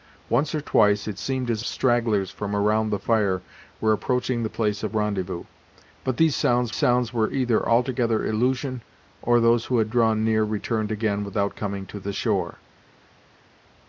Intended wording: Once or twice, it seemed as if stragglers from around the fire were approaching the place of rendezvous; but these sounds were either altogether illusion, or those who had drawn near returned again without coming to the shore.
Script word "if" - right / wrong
wrong